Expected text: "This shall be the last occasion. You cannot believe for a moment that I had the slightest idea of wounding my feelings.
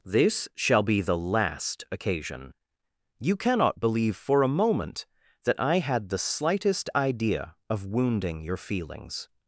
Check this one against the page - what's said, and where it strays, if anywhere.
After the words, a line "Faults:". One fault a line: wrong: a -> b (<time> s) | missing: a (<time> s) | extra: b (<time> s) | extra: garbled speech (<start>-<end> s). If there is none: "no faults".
"This shall be the last occasion. You cannot believe for a moment that I had the slightest idea of wounding your feelings.
Faults:
wrong: my -> your (8.4 s)